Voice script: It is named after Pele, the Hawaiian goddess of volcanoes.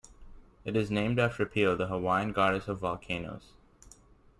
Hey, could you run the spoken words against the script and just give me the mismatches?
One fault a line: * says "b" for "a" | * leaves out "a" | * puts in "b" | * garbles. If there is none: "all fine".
all fine